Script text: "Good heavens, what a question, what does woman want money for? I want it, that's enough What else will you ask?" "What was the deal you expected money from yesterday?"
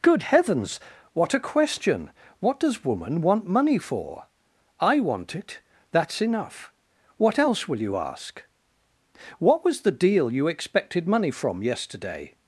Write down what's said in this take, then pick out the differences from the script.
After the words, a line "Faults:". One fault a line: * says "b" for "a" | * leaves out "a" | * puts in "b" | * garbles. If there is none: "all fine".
"Good heavens, what a question, what does woman want money for? I want it, that's enough What else will you ask?" "What was the deal you expected money from yesterday?"
Faults:
all fine